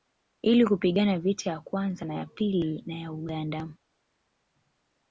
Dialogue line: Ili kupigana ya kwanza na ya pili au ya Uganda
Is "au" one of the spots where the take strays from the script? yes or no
yes